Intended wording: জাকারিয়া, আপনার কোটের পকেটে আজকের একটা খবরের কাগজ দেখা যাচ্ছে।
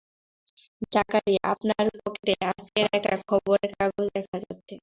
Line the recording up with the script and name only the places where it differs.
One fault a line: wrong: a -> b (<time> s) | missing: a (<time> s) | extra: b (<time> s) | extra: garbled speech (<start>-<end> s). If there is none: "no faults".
missing: কোটের (1.9 s)